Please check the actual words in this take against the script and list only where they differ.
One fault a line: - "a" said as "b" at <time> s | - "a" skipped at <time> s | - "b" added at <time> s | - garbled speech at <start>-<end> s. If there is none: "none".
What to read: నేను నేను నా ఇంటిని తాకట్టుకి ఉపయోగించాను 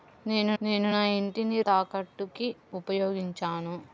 none